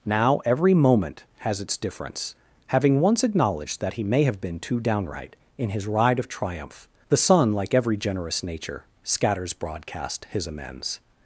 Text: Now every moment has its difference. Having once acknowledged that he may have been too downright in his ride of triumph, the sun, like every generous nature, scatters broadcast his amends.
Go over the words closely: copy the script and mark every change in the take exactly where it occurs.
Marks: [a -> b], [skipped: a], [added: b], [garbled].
Now every moment has its difference. Having once acknowledged that he may have been too downright in his ride of triumph, the sun, like every generous nature, scatters broadcast his amends.